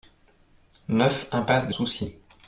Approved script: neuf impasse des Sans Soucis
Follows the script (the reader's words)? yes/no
no